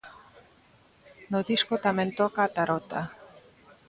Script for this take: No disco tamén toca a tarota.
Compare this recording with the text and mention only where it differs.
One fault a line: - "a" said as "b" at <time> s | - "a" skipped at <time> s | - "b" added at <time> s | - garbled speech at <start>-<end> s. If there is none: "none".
none